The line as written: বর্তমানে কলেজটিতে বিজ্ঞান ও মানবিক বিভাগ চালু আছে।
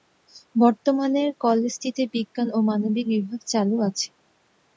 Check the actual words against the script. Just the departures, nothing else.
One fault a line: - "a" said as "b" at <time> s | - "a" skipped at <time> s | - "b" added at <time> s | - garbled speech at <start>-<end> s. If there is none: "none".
none